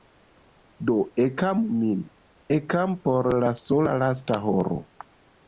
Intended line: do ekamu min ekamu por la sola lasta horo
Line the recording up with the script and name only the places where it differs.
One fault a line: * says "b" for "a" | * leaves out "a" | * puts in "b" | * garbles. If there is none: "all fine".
all fine